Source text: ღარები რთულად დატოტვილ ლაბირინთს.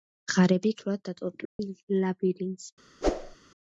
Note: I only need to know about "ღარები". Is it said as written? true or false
true